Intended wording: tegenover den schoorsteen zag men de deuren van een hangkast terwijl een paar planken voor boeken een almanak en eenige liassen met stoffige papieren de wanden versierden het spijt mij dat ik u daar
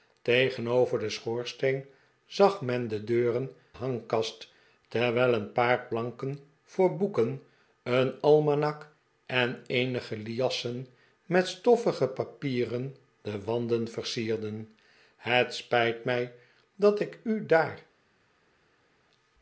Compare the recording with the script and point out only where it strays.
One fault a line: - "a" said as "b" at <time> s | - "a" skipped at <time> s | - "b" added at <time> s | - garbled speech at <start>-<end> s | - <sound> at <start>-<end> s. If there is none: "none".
- "van een" skipped at 3.5 s